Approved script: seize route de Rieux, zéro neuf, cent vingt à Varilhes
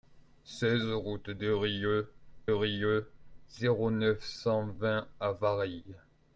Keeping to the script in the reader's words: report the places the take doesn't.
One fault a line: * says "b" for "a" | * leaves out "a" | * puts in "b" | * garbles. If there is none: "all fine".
* puts in "Rieux"